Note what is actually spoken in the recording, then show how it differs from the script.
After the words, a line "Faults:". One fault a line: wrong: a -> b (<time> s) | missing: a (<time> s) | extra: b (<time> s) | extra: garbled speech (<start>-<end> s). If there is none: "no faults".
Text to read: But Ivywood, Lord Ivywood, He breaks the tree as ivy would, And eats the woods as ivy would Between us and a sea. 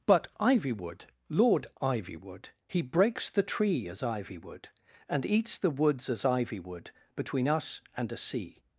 But Ivywood, Lord Ivywood, He breaks the tree as ivy would, And eats the woods as ivy would Between us and a sea.
Faults:
no faults